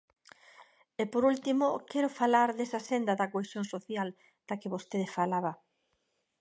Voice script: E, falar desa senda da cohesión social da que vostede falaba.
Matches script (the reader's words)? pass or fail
fail